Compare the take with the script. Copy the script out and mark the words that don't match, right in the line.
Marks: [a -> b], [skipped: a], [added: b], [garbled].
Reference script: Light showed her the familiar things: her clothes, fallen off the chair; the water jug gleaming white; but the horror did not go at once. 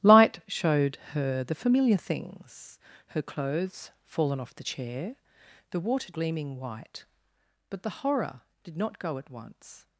Light showed her the familiar things: her clothes, fallen off the chair; the water [skipped: jug] gleaming white; but the horror did not go at once.